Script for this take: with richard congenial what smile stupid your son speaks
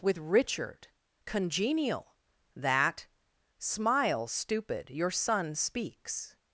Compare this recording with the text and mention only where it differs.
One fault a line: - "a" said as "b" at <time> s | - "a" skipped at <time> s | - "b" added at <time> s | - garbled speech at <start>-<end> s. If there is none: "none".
- "what" said as "that" at 2.6 s